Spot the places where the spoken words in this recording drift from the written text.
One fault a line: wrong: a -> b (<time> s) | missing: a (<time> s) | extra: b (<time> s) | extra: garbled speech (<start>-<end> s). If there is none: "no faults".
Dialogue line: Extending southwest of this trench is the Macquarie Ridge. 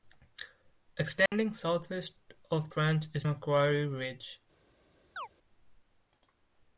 missing: this (2.7 s)
missing: the (3.3 s)